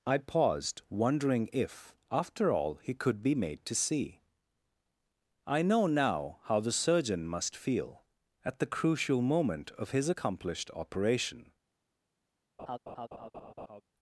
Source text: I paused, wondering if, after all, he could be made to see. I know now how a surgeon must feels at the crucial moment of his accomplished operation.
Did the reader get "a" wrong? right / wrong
wrong